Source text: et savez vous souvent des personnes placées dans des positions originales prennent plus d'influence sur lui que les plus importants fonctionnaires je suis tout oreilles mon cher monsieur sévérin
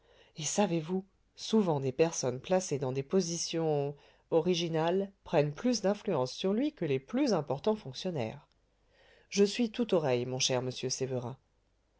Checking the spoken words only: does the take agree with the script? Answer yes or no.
yes